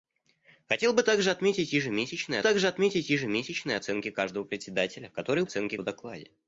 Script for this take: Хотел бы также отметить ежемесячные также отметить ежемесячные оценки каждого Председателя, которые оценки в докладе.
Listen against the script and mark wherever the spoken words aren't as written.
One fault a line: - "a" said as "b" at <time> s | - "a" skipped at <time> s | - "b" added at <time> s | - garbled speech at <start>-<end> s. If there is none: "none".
none